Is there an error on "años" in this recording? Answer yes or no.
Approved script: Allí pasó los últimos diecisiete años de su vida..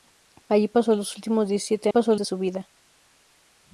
yes